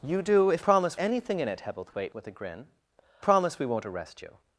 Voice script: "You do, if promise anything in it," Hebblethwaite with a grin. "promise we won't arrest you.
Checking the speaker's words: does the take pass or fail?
pass